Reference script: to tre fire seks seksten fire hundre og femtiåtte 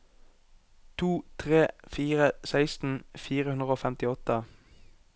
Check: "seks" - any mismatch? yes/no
yes